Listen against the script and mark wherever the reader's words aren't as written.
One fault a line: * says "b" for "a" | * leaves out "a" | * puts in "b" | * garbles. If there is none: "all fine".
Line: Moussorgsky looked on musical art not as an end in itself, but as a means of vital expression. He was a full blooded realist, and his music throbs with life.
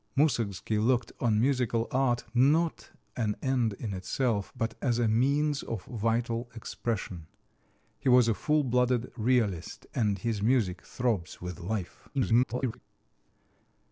* leaves out "as"
* garbles